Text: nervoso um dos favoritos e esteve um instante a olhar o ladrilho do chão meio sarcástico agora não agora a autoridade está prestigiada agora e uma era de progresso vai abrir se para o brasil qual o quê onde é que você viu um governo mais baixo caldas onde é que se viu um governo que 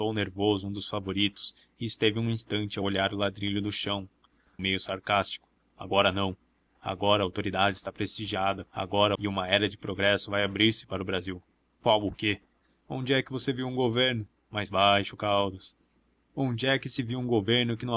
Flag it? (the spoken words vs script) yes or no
no